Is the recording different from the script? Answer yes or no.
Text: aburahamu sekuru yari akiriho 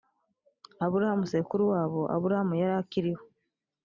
yes